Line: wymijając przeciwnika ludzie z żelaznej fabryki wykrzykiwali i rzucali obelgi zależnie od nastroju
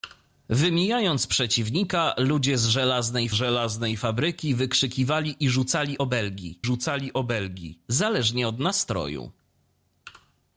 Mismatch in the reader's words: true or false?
true